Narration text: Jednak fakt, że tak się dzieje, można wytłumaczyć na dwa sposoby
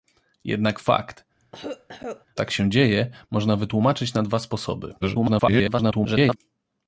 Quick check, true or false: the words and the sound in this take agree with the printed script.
false